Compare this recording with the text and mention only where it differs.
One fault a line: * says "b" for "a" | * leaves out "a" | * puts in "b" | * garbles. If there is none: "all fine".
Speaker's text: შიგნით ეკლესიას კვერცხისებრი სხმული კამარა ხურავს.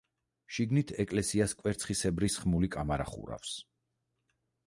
all fine